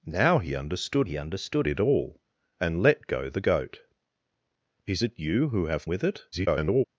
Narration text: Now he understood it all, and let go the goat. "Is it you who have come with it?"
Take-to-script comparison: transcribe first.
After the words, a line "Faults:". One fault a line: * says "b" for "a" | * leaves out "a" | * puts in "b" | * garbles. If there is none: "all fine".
Now he understood he understood it all, and let go the goat. "Is it you who have with it?" [garbled]
Faults:
* puts in "he understood"
* leaves out "come"
* garbles